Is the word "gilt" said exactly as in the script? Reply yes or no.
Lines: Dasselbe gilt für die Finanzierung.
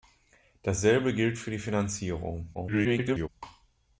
yes